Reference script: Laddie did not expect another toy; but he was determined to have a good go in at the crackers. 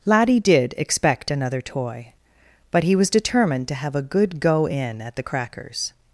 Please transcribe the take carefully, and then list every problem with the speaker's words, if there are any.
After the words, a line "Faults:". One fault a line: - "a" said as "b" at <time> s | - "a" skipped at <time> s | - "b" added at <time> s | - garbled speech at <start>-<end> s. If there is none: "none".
Laddie did expect another toy; but he was determined to have a good go in at the crackers.
Faults:
- "not" skipped at 0.7 s